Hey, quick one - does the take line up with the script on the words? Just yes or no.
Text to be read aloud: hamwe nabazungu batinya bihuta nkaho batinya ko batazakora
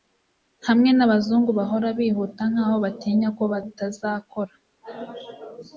no